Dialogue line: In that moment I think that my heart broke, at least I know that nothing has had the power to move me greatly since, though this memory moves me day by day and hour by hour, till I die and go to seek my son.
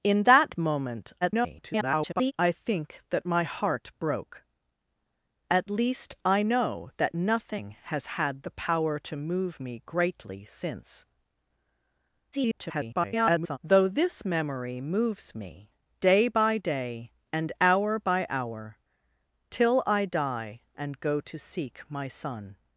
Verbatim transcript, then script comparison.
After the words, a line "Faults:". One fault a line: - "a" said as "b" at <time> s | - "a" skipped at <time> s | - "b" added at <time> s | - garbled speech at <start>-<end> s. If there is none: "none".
In that moment [garbled] I think that my heart broke, at least I know that nothing has had the power to move me greatly since, [garbled] though this memory moves me day by day and hour by hour, till I die and go to seek my son.
Faults:
- garbled speech at 1.2-2.3 s
- garbled speech at 12.3-13.6 s